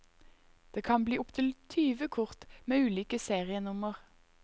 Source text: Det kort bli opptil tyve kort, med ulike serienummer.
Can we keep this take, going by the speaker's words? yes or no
no